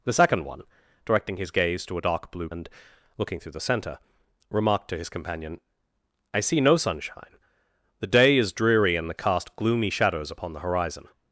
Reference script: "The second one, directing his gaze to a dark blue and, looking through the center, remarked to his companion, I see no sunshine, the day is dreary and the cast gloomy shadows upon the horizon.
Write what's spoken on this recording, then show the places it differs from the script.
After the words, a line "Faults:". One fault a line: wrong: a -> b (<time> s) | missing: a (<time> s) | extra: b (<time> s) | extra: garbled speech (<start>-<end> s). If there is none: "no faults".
"The second one, directing his gaze to a dark blue and, looking through the center, remarked to his companion, I see no sunshine, the day is dreary and the cast gloomy shadows upon the horizon.
Faults:
no faults